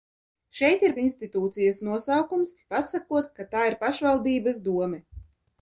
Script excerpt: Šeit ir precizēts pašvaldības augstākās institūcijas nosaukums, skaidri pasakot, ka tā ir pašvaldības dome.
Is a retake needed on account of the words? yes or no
yes